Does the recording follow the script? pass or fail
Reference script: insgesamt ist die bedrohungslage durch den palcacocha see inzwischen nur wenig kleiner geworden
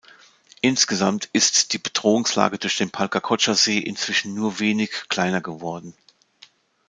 pass